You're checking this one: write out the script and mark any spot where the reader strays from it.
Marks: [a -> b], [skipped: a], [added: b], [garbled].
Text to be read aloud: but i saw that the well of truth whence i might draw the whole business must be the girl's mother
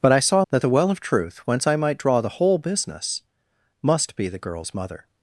but i saw that the well of truth whence i might draw the whole business must be the girl's mother